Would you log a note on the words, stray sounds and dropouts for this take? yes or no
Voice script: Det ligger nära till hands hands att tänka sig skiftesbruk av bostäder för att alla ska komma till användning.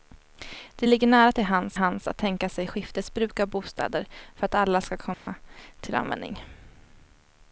yes